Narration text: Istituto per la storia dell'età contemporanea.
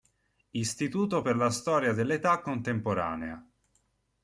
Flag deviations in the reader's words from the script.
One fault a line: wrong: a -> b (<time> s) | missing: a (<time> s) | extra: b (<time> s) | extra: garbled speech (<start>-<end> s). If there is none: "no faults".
no faults